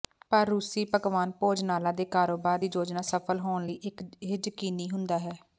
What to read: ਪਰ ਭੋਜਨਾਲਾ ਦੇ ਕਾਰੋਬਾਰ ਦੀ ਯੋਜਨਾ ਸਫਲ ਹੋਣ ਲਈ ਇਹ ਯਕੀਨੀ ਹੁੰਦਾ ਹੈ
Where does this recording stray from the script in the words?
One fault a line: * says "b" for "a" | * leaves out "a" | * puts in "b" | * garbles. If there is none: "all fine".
* puts in "ਰੂਸੀ ਪਕਵਾਨ"